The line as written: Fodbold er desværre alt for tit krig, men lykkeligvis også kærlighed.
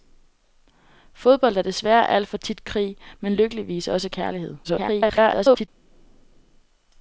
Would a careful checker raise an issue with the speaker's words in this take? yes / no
yes